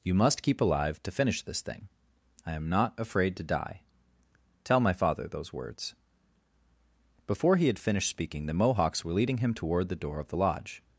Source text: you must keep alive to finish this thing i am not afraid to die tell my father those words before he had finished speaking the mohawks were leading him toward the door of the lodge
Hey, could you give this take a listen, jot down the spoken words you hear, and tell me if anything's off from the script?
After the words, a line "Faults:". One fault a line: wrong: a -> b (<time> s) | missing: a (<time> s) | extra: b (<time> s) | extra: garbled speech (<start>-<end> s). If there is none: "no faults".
you must keep alive to finish this thing i am not afraid to die tell my father those words before he had finished speaking the mohawks were leading him toward the door of the lodge
Faults:
no faults